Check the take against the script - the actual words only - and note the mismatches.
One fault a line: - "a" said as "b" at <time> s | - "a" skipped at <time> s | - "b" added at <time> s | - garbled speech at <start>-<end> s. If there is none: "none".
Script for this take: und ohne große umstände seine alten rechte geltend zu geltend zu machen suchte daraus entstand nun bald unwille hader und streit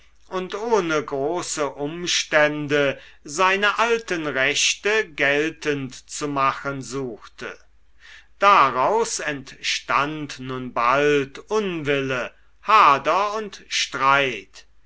- "geltend zu" skipped at 6.3 s